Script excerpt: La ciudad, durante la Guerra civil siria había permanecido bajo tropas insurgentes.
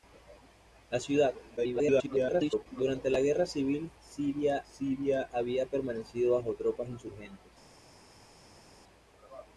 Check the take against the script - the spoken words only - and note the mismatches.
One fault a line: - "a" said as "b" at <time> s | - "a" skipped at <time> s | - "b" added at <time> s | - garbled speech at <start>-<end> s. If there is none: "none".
- garbled speech at 1.6-2.7 s
- "siria" added at 4.7 s